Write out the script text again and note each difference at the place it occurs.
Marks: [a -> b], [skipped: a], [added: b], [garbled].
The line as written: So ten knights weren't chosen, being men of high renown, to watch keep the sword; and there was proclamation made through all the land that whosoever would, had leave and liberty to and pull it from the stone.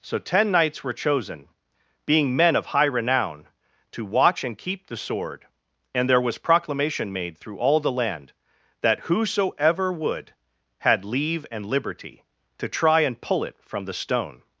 So ten knights [weren't -> were] chosen, being men of high renown, to watch [added: and] keep the sword; and there was proclamation made through all the land that whosoever would, had leave and liberty to [added: try] and pull it from the stone.